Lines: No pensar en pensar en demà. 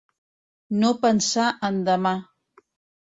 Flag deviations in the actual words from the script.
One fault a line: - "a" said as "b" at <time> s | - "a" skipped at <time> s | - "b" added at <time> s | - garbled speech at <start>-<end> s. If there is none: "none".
- "pensar en" skipped at 1.8 s